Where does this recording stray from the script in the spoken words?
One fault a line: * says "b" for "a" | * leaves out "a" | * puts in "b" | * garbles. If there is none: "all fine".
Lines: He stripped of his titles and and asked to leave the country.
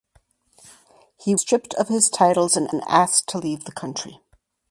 all fine